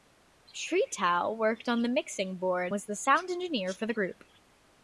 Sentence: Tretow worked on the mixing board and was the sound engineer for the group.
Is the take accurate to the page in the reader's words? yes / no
no